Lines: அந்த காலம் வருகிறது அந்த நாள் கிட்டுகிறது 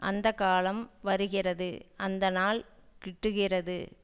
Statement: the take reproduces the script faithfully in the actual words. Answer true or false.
true